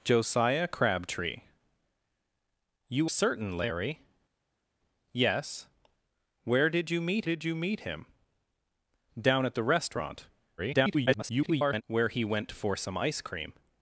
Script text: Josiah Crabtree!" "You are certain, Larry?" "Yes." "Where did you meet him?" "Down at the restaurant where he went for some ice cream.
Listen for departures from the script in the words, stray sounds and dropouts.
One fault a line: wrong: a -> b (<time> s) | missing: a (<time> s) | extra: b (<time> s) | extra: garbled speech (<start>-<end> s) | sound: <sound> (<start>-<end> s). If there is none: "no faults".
missing: are (3.1 s)
extra: did you meet (7.2 s)
extra: garbled speech (10.6-11.8 s)